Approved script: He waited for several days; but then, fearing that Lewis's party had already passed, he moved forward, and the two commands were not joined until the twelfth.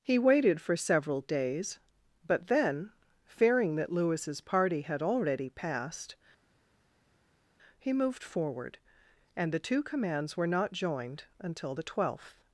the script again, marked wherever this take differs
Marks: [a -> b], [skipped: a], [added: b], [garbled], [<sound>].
He waited for several days; but then, fearing that Lewis's party had already passed, he moved forward, and the two commands were not joined until the twelfth.